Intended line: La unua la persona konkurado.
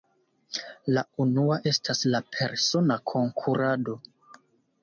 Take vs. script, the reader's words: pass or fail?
fail